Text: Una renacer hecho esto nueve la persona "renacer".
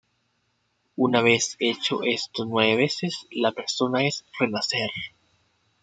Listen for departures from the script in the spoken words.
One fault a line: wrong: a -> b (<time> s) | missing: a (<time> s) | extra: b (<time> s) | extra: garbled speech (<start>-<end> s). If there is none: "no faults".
wrong: renacer -> vez (1.2 s)
extra: veces (2.8 s)
extra: es (4.0 s)